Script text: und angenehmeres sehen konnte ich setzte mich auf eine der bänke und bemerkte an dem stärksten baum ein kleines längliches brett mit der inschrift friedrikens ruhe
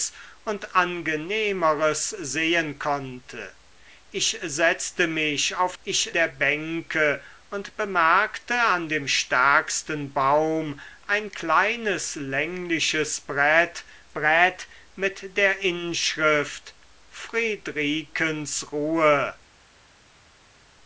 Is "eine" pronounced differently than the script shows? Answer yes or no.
yes